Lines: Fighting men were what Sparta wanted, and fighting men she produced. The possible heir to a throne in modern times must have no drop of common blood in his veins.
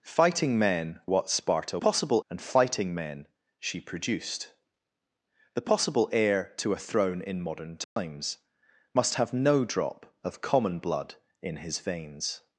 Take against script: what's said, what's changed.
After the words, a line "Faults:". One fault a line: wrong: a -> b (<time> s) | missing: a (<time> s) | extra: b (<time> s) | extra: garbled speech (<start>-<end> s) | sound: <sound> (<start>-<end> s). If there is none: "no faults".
Fighting men what Sparta possible, and fighting men she produced. The possible heir to a throne in modern times must have no drop of common blood in his veins.
Faults:
missing: were (1.0 s)
wrong: wanted -> possible (1.8 s)
sound: dropout (7.8-8.0 s)